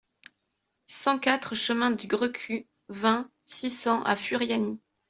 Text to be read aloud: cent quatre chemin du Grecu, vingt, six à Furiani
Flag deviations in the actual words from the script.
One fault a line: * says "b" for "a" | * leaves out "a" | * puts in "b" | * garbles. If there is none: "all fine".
* puts in "cents"